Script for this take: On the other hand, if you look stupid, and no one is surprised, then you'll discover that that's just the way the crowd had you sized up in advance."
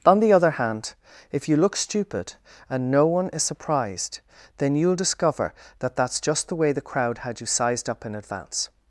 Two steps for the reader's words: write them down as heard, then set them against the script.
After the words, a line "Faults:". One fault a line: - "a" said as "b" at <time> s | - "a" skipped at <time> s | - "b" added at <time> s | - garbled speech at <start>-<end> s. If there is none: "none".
On the other hand, if you look stupid, and no one is surprised, then you'll discover that that's just the way the crowd had you sized up in advance."
Faults:
none